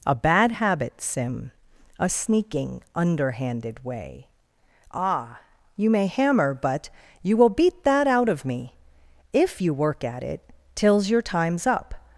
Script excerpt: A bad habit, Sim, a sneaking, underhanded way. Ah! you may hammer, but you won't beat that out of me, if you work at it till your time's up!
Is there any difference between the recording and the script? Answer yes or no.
yes